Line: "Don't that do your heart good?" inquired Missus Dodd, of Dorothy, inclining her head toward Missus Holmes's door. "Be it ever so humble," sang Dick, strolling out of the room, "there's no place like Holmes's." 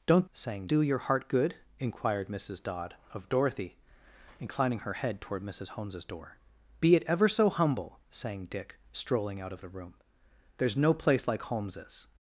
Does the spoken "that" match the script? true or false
false